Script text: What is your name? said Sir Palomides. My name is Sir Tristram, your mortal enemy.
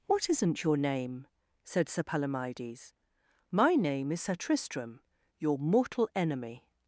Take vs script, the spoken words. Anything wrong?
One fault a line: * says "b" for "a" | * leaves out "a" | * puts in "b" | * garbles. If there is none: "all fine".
* says "isn't" for "is"